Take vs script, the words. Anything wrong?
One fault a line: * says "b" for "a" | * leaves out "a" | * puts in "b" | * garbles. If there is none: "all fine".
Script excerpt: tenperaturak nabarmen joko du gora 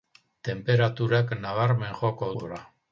* leaves out "du"